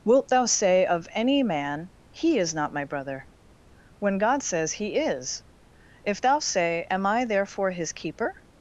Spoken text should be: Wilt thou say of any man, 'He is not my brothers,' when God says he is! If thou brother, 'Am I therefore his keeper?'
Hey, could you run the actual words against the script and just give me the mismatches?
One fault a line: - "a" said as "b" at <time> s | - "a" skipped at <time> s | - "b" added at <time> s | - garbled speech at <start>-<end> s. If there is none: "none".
- "brothers" said as "brother" at 2.9 s
- "brother" said as "say" at 6.4 s